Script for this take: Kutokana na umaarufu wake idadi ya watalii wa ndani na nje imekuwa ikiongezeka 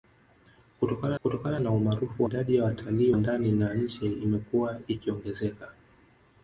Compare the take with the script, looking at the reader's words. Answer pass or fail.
fail